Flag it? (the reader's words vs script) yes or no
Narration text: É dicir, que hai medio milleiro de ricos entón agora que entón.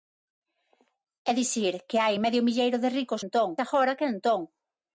no